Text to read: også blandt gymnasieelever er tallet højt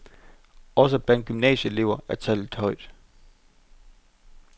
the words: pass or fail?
pass